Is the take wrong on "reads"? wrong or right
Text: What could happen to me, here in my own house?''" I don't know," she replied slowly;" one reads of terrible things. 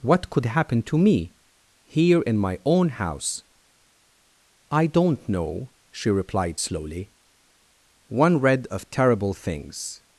wrong